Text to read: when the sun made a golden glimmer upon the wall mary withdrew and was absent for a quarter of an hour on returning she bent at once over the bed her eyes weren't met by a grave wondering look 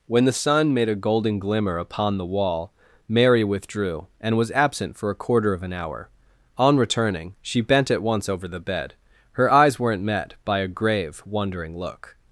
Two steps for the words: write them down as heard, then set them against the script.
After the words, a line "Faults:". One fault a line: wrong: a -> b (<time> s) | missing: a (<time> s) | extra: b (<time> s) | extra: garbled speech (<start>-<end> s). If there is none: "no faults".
when the sun made a golden glimmer upon the wall mary withdrew and was absent for a quarter of an hour on returning she bent at once over the bed her eyes weren't met by a grave wondering look
Faults:
no faults